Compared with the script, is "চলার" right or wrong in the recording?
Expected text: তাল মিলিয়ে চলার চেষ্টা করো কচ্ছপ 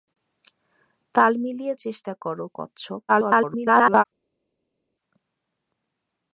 wrong